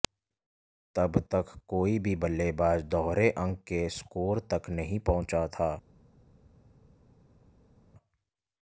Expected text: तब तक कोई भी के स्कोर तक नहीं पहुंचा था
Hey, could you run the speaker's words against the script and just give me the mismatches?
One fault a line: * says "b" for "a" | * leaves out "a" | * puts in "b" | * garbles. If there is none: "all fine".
* puts in "बल्लेबाज दोहरे अंक"